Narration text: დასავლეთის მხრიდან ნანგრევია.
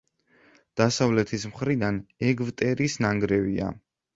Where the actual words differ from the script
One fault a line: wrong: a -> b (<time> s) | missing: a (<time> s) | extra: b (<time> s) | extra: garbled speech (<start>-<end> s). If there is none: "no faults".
extra: ეგვტერის (2.3 s)